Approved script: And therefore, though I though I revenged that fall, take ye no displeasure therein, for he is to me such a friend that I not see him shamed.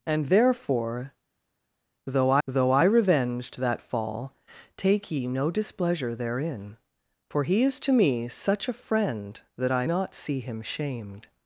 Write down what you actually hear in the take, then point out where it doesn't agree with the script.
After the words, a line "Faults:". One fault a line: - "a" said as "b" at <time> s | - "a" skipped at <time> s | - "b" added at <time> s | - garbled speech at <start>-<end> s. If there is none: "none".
And therefore, though I though I revenged that fall, take ye no displeasure therein, for he is to me such a friend that I not see him shamed.
Faults:
none